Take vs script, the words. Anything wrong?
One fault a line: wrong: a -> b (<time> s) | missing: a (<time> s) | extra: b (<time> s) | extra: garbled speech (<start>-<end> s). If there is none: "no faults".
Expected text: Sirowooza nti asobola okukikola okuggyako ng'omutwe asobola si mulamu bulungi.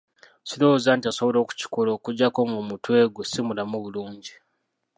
wrong: asobola -> gwe (3.1 s)